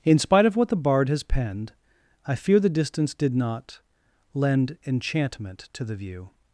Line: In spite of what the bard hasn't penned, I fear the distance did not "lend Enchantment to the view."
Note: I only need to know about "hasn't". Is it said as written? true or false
false